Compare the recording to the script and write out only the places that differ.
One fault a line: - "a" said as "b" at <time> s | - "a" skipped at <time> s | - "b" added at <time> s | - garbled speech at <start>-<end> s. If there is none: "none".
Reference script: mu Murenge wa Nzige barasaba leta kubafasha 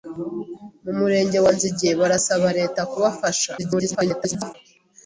- garbled speech at 3.6-4.5 s